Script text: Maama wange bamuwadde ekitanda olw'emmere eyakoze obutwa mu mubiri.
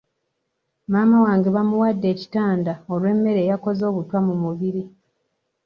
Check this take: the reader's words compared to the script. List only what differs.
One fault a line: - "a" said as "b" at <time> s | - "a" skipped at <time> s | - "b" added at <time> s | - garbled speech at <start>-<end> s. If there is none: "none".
none